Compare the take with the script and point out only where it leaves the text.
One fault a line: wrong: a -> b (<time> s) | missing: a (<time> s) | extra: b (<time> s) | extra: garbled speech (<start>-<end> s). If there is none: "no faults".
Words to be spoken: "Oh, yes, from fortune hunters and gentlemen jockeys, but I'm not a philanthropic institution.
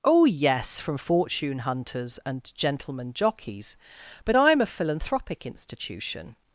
missing: not (4.6 s)